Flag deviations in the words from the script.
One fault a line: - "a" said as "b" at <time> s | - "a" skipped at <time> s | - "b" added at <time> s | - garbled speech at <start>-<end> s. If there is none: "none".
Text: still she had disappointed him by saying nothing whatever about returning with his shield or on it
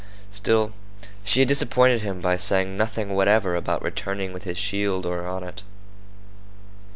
none